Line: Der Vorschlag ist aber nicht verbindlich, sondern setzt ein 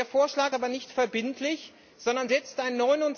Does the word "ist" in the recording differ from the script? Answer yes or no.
yes